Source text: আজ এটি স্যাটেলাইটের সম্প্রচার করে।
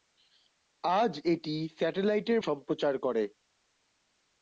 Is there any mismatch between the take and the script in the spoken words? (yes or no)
no